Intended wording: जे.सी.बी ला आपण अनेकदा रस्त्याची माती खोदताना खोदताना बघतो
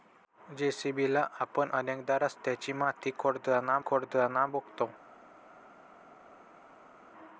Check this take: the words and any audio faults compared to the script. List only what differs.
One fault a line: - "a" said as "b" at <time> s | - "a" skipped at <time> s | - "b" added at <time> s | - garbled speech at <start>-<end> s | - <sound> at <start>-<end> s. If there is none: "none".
none